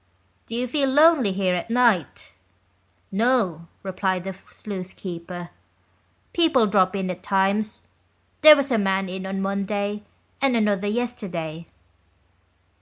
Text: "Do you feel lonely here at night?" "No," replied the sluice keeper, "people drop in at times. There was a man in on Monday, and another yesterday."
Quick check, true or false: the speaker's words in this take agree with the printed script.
true